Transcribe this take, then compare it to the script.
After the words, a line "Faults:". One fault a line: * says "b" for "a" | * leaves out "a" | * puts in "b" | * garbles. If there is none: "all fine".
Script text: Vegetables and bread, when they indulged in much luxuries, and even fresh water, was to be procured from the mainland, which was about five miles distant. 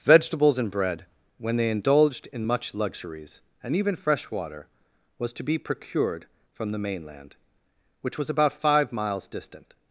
Vegetables and bread, when they indulged in much luxuries, and even fresh water, was to be procured from the mainland, which was about five miles distant.
Faults:
all fine